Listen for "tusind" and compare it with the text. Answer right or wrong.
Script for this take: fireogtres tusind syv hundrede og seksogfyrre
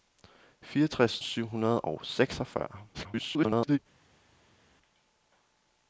wrong